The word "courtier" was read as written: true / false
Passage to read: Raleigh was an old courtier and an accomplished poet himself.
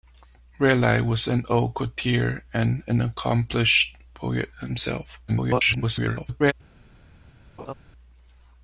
true